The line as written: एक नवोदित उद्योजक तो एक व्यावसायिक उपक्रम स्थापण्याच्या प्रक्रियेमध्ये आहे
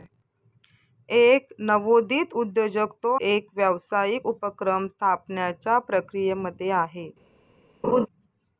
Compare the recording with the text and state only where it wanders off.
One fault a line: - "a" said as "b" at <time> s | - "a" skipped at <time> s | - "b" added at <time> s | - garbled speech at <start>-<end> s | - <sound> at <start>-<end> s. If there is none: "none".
- laugh at 7.8-8.1 s